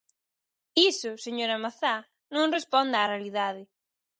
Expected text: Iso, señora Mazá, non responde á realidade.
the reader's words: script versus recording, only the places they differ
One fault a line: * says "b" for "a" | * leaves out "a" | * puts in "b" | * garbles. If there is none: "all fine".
all fine